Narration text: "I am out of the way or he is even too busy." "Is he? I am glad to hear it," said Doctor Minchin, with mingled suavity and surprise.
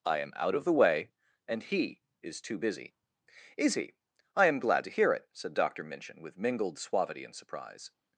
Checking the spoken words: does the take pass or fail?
fail